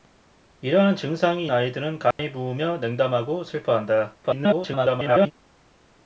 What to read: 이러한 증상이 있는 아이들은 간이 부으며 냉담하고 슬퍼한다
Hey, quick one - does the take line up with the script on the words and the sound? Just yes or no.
no